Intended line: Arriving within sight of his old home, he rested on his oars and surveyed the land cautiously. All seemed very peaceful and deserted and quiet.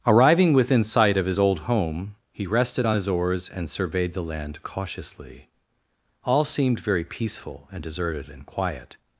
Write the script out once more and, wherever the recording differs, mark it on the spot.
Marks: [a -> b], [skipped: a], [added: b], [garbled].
Arriving within sight of his old home, he rested on his oars and surveyed the land cautiously. All seemed very peaceful and deserted and quiet.